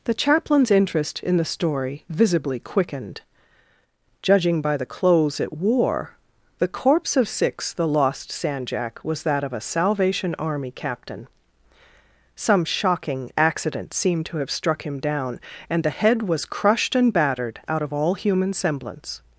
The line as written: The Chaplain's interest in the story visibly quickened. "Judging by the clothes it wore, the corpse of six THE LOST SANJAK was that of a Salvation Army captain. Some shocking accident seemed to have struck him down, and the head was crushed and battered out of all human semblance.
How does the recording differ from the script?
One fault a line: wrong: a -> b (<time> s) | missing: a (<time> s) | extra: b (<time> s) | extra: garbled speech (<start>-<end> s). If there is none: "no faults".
no faults